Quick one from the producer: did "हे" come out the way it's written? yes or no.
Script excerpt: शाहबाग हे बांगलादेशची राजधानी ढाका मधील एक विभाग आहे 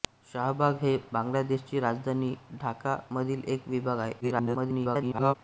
yes